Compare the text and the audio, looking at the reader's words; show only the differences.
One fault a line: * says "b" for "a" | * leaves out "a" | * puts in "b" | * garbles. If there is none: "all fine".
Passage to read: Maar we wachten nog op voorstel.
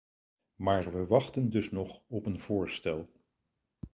* puts in "dus"
* puts in "een"